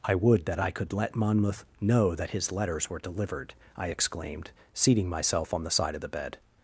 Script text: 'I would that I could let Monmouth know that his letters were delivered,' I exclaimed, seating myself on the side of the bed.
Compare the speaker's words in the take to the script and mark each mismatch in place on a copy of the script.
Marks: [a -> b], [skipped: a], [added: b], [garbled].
'I would that I could let Monmouth know that his letters were delivered,' I exclaimed, seating myself on the side of the bed.